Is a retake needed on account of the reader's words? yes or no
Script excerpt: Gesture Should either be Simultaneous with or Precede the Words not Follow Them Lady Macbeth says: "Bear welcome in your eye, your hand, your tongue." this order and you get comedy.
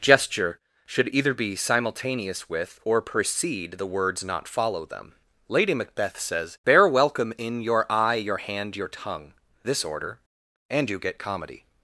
no